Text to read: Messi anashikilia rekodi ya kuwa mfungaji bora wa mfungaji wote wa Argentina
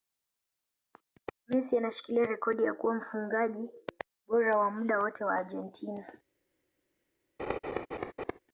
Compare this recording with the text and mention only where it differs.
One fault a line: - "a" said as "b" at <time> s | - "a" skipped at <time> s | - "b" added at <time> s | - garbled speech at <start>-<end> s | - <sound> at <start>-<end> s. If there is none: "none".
- "mfungaji" said as "muda" at 4.7 s
- laugh at 7.4-8.4 s